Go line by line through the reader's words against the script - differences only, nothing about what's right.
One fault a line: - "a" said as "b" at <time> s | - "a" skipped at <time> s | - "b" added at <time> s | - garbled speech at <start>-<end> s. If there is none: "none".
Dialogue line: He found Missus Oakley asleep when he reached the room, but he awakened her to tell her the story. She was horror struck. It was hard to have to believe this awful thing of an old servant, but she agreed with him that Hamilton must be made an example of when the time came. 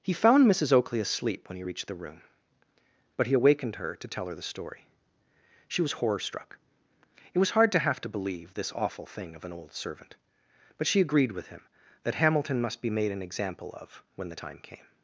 none